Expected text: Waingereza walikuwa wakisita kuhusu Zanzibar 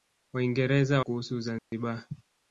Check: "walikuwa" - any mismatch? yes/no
yes